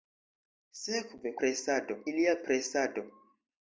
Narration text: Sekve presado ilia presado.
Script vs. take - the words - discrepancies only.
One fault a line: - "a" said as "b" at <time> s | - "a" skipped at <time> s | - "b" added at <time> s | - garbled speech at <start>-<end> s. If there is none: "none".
none